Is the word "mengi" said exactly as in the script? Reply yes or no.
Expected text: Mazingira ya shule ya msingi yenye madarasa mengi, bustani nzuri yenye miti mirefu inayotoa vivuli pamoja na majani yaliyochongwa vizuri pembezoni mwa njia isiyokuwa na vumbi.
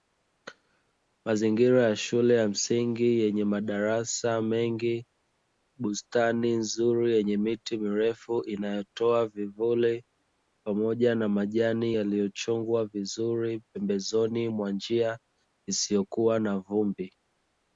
yes